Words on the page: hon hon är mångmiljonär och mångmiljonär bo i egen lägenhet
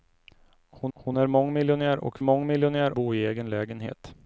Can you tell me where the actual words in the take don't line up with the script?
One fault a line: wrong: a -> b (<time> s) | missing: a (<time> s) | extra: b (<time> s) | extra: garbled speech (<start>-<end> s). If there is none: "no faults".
no faults